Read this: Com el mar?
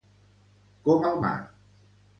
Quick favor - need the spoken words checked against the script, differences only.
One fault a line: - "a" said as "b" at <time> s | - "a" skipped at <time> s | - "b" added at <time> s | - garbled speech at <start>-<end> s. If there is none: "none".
none